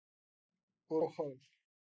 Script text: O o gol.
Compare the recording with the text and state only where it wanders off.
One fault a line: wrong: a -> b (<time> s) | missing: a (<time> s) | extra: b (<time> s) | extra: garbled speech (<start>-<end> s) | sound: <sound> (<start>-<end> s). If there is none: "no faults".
no faults